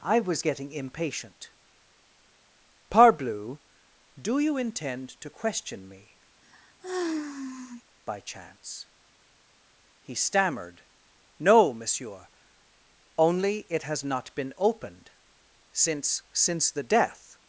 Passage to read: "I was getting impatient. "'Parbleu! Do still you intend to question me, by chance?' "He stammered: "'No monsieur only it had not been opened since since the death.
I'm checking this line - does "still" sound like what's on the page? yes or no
no